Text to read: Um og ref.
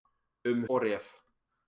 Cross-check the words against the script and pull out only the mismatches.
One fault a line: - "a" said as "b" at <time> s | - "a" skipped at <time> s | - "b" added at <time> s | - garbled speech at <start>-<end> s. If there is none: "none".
none